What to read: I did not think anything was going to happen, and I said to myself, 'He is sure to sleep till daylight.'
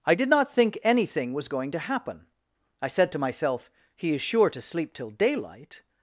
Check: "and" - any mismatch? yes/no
yes